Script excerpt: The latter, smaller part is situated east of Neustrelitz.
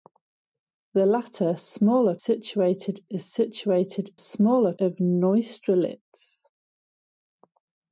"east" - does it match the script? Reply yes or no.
no